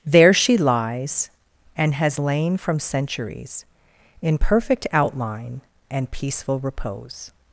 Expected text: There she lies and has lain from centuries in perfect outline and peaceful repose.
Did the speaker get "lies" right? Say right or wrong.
right